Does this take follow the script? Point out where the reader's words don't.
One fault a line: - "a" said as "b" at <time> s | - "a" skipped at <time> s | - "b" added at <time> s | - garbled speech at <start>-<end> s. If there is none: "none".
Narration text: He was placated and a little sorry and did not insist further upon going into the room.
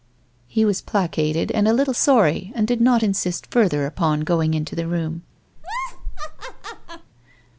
none